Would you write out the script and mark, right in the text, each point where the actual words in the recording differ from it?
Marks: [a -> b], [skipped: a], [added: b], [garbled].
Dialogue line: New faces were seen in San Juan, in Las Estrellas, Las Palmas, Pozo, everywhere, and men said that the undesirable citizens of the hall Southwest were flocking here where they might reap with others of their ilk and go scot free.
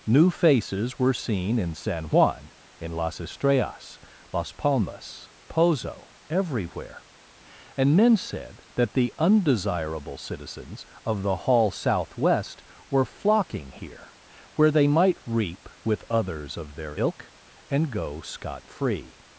New faces were seen in San Juan, in Las Estrellas, Las Palmas, Pozo, everywhere, and men said that the undesirable citizens of the hall Southwest were flocking here where they might reap with others of their ilk and go scot free.